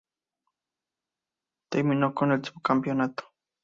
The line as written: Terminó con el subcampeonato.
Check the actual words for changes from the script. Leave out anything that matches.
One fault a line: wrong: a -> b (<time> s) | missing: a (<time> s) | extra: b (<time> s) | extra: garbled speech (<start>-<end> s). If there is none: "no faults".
no faults